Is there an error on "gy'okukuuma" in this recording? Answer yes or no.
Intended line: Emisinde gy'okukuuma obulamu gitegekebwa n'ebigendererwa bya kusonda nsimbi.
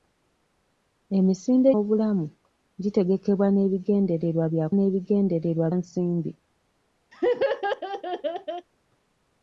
yes